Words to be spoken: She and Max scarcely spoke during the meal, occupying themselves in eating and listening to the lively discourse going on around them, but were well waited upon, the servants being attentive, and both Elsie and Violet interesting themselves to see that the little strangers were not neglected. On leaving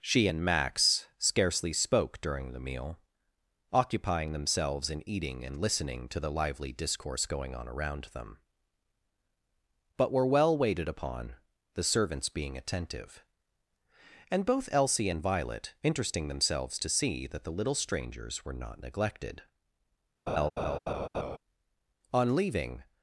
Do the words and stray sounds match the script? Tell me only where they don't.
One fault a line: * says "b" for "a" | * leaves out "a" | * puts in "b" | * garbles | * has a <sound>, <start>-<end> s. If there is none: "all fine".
* has a laugh, 20.3-21.4 s